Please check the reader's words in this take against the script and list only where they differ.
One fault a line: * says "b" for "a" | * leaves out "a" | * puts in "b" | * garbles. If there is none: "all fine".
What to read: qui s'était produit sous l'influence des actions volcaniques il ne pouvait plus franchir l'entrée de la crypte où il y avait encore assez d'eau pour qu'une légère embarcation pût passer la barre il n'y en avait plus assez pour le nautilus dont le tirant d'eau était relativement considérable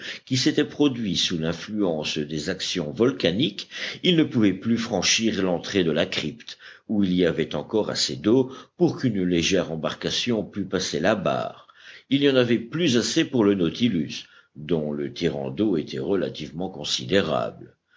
all fine